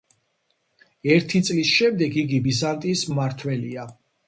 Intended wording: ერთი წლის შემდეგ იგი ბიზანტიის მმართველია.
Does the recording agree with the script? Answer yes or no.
yes